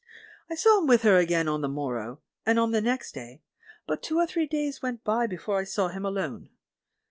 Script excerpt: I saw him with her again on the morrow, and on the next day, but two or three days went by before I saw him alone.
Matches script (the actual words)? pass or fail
pass